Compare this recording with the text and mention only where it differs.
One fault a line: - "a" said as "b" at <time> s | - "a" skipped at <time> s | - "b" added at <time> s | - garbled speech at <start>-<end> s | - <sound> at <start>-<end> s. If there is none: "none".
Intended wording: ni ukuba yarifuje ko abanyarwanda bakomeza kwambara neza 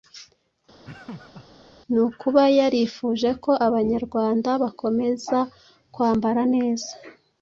- laugh at 0.8-1.5 s